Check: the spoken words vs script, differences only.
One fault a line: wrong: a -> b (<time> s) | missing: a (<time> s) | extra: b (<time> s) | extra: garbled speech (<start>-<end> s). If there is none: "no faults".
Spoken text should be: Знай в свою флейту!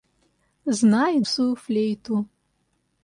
no faults